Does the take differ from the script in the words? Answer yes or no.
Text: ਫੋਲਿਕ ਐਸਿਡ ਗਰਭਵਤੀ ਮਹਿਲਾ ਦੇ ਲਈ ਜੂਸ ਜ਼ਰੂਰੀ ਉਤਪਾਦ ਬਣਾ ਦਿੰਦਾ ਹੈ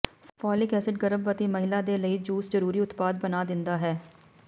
no